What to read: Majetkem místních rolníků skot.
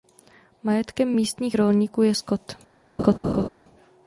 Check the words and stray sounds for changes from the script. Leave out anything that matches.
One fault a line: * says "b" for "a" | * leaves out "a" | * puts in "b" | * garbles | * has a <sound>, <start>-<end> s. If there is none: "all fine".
* puts in "je"
* has a laugh, 3.0-3.5 s